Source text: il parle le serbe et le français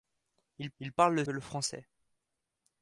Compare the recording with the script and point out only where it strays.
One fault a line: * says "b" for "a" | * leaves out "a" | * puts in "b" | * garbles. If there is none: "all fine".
* puts in "il"
* leaves out "serbe"